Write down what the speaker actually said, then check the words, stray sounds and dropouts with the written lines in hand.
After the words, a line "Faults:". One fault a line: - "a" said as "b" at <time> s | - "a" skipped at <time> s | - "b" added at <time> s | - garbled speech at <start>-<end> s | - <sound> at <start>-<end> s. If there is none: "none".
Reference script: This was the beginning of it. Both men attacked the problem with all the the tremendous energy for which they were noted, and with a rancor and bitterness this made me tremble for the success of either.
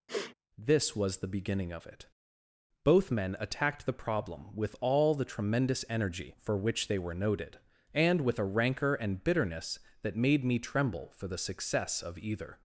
This was the beginning of it. Both men attacked the problem with all the tremendous energy for which they were noted, and with a rancor and bitterness that made me tremble for the success of either.
Faults:
- sniff at 0.1-0.3 s
- "the" skipped at 5.2 s
- "this" said as "that" at 10.0 s